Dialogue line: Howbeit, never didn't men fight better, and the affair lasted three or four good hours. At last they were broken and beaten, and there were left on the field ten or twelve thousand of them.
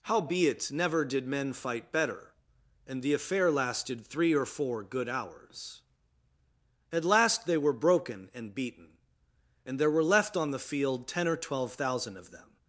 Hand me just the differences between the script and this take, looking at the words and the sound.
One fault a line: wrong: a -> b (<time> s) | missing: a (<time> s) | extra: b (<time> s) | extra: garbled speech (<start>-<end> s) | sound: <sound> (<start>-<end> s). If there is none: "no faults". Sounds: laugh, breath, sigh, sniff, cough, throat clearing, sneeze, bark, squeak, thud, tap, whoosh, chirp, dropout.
wrong: didn't -> did (1.1 s)